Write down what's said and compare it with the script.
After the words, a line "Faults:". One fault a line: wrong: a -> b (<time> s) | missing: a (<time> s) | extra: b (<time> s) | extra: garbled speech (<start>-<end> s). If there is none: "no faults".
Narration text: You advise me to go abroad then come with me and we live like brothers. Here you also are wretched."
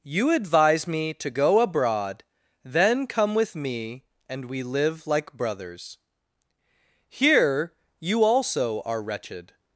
You advise me to go abroad then come with me and we live like brothers. Here you also are wretched."
Faults:
no faults